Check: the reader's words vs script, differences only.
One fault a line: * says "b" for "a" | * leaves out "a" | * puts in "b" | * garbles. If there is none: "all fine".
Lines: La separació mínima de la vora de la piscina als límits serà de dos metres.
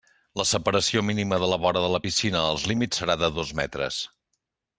all fine